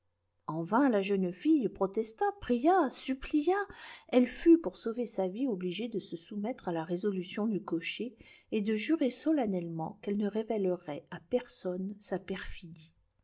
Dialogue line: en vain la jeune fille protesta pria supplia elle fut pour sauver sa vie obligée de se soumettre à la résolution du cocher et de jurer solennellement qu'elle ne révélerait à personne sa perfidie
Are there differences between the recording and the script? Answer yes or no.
no